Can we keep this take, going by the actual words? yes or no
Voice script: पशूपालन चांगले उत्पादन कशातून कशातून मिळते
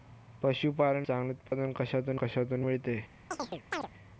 yes